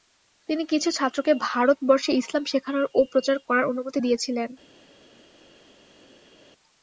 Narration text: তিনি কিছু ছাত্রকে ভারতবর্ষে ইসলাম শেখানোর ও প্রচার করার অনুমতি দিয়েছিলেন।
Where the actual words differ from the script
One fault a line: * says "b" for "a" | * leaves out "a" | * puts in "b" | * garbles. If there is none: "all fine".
all fine